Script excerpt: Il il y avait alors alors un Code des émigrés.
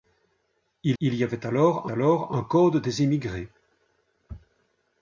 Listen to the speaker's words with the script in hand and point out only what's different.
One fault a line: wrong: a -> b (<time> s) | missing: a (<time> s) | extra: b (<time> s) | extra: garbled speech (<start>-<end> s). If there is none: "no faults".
no faults